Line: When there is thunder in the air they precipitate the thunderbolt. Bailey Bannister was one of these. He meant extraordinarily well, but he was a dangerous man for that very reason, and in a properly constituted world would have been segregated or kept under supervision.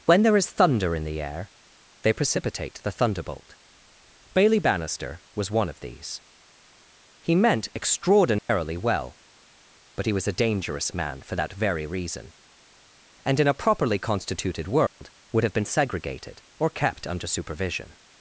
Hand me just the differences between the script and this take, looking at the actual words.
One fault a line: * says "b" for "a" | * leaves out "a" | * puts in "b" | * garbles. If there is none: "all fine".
all fine